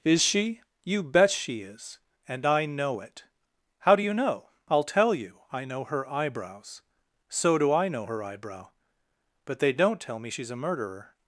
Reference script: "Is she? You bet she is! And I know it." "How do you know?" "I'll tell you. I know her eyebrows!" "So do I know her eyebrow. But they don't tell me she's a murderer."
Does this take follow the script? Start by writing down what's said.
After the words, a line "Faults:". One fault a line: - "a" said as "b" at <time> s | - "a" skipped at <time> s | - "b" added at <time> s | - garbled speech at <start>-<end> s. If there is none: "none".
"Is she? You bet she is! And I know it." "How do you know?" "I'll tell you. I know her eyebrows!" "So do I know her eyebrow. But they don't tell me she's a murderer."
Faults:
none